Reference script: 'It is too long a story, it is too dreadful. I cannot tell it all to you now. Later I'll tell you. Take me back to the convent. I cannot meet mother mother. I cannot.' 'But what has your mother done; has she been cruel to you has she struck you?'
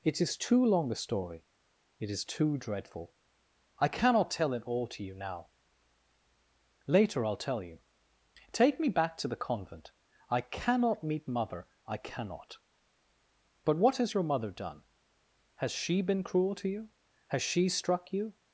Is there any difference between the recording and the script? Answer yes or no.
yes